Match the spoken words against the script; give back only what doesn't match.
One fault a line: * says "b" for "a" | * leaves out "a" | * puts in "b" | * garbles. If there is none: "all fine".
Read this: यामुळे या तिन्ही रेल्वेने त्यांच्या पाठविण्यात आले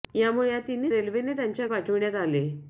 all fine